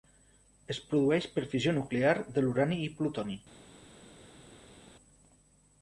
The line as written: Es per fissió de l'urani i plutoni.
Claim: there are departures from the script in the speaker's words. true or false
true